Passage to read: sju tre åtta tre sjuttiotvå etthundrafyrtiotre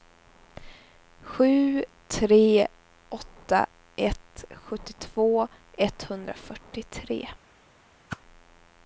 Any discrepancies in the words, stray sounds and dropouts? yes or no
yes